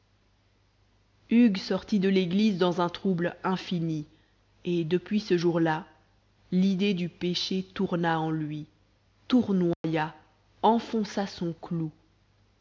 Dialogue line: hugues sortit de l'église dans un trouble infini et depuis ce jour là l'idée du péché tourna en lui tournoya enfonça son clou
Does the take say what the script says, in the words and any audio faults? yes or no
no